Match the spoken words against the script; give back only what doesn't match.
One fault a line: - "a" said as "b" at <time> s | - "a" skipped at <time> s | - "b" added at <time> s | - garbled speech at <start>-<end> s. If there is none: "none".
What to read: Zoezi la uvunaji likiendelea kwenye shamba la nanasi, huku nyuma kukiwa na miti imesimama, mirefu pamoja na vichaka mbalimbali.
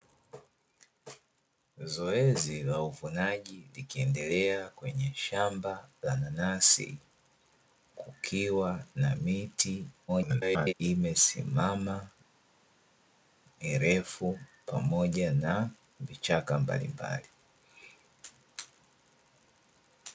- "huku nyuma" skipped at 7.0 s
- garbled speech at 10.1-10.7 s